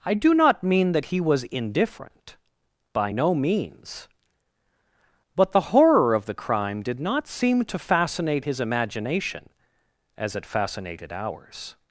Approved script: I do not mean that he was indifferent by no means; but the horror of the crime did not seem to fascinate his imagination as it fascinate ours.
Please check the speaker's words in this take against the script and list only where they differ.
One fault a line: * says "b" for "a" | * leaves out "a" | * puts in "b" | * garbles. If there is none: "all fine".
* says "fascinated" for "fascinate"